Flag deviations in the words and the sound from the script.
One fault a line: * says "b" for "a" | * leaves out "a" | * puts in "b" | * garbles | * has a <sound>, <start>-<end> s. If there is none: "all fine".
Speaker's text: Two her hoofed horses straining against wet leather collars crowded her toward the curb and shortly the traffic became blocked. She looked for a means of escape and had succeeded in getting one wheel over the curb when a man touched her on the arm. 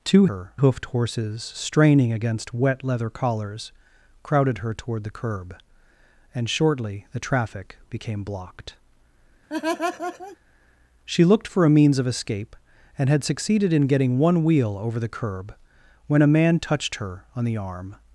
* has a laugh, 9.5-10.4 s